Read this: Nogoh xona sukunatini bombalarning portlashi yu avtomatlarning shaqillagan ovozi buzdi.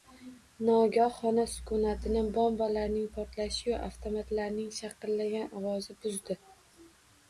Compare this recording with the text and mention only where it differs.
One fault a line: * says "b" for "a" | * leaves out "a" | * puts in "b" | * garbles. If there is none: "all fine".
all fine